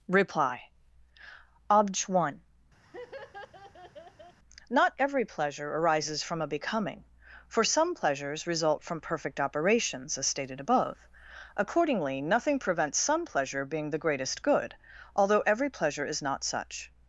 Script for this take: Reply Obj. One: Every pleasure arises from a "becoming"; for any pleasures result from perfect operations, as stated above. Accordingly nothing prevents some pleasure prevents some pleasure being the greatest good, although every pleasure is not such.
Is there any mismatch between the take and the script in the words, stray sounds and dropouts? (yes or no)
yes